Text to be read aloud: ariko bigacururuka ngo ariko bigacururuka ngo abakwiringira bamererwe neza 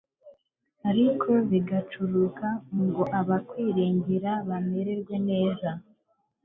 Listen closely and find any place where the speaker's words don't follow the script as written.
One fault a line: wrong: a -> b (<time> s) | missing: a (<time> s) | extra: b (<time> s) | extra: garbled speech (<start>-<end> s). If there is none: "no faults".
missing: ariko bigacururuka ngo (3.0 s)